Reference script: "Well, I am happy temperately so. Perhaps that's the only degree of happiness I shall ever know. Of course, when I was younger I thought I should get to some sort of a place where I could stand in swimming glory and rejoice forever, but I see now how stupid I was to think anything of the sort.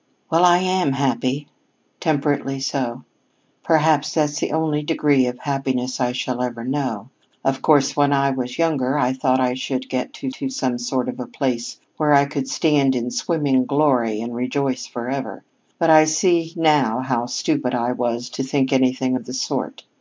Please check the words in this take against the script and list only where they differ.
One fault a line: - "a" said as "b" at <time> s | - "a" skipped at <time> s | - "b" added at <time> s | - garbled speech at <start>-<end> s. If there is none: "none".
- "to" added at 10.3 s